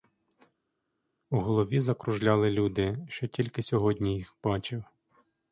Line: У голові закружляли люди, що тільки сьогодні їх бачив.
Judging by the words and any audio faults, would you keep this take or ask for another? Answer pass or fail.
pass